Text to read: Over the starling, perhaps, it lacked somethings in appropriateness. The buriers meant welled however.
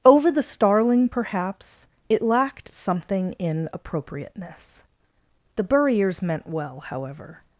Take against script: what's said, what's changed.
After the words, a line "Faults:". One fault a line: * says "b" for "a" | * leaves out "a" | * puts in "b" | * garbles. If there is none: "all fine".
Over the starling, perhaps, it lacked something in appropriateness. The buriers meant well however.
Faults:
* says "something" for "somethings"
* says "well" for "welled"